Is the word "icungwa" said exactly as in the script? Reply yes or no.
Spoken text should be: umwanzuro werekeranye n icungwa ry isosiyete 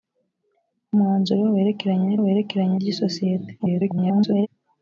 no